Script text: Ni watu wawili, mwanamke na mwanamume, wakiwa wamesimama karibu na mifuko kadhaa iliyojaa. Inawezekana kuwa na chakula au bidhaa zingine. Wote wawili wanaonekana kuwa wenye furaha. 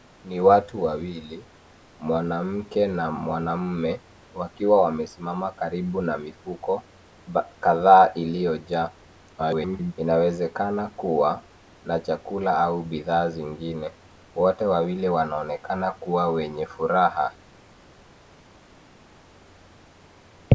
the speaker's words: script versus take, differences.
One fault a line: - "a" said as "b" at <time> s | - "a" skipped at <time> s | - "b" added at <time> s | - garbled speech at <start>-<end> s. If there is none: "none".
- garbled speech at 9.4-9.9 s